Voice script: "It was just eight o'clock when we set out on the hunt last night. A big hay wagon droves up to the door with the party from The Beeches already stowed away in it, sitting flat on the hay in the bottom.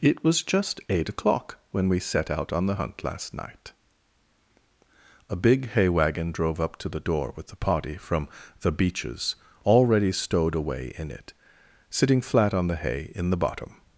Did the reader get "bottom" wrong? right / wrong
right